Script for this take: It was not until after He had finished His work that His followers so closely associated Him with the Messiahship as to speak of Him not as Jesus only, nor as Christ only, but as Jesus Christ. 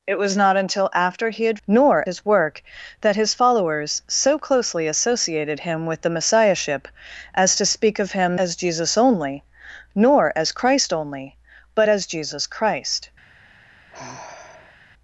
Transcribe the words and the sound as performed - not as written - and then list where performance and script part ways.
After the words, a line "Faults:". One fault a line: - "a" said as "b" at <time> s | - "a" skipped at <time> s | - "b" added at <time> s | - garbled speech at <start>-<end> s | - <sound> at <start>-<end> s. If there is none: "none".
It was not until after He had nor His work that His followers so closely associated Him with the Messiahship as to speak of Him as Jesus only, nor as Christ only, but as Jesus Christ.
Faults:
- "finished" said as "nor" at 1.7 s
- "not" skipped at 8.4 s
- sigh at 13.9-14.8 s